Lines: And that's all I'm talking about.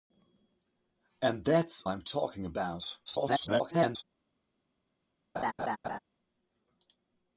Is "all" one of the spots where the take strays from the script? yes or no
yes